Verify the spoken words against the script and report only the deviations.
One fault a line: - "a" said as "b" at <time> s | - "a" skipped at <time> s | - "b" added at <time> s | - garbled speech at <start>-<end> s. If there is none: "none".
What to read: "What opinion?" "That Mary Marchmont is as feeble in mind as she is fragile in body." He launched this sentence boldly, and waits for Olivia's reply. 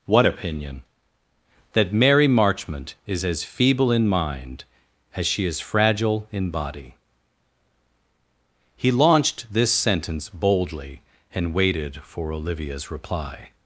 - "waits" said as "waited" at 11.5 s